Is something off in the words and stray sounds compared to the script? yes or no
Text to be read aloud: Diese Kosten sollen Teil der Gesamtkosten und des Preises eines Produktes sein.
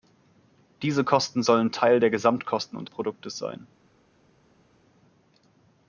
yes